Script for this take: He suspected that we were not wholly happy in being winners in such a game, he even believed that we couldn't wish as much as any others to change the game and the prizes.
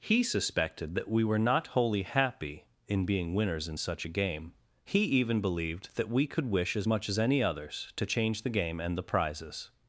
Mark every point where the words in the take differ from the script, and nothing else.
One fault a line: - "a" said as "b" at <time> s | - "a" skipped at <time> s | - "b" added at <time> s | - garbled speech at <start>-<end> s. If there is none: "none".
- "couldn't" said as "could" at 6.3 s